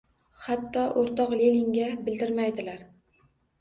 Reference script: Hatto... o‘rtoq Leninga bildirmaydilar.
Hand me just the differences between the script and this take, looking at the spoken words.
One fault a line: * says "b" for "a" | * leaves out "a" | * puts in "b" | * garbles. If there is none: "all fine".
all fine